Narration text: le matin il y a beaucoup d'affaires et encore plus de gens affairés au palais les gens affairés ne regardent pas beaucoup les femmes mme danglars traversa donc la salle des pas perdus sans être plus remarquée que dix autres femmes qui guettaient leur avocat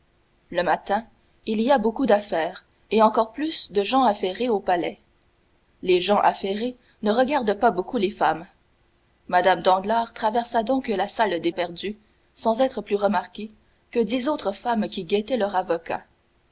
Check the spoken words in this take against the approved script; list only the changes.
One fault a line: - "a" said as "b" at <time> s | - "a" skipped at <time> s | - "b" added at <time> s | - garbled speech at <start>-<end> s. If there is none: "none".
- "pas" skipped at 11.5 s